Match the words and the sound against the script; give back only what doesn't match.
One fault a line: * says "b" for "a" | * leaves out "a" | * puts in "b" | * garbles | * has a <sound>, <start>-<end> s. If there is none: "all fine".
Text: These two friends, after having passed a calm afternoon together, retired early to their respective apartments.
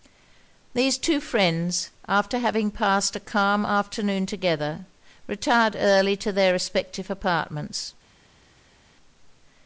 all fine